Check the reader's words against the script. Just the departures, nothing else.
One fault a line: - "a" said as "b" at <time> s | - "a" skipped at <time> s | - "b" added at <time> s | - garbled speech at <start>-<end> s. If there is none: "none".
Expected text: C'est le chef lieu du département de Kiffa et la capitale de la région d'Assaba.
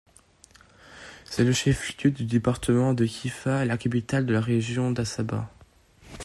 none